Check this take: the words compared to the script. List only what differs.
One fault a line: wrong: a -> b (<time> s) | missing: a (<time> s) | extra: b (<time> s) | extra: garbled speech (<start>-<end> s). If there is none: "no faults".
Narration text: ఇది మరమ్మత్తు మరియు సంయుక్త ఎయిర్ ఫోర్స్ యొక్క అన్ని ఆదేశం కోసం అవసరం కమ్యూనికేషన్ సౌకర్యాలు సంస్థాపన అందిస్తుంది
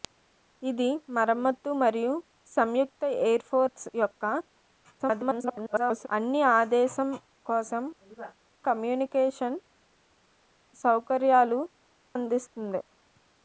extra: garbled speech (5.0-6.1 s)
missing: అవసరం (7.8 s)
missing: సంస్థాపన (11.6 s)